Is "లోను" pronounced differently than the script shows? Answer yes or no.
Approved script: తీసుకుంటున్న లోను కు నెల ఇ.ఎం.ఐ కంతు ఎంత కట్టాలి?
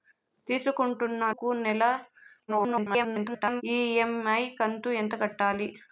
yes